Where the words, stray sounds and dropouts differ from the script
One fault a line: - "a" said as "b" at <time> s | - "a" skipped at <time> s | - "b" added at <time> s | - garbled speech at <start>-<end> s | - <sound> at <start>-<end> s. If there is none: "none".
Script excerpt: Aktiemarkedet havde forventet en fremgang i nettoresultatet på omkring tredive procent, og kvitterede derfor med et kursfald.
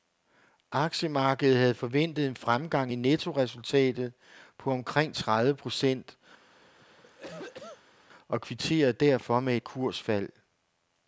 - cough at 6.4-8.0 s